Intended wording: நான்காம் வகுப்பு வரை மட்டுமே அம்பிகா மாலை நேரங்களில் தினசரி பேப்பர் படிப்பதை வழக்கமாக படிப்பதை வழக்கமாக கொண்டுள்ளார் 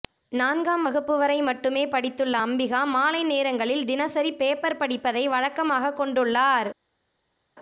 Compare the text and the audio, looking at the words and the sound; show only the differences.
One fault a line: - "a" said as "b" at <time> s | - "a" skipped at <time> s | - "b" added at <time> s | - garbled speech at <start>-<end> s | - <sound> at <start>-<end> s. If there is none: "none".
- "படித்துள்ள" added at 1.9 s
- "படிப்பதை வழக்கமாக" skipped at 5.9 s